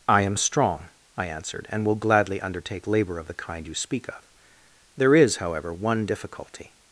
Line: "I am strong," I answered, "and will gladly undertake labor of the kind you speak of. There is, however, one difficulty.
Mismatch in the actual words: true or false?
false